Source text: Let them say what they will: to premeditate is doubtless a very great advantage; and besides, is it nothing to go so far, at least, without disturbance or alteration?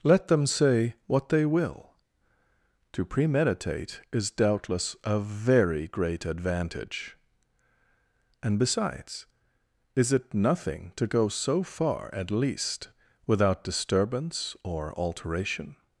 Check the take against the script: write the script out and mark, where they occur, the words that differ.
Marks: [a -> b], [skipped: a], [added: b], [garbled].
Let them say what they will: to premeditate is doubtless a very great advantage; and besides, is it nothing to go so far, at least, without disturbance or alteration?